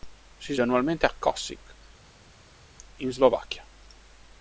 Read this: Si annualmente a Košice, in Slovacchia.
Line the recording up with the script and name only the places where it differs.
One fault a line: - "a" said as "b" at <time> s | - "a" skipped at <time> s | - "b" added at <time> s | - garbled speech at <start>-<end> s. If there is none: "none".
none